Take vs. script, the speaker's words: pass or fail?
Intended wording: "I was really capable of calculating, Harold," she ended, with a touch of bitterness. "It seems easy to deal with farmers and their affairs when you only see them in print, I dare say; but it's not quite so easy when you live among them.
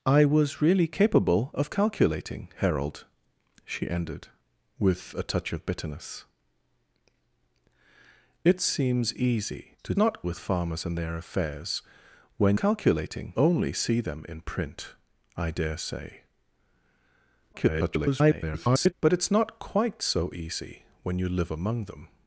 fail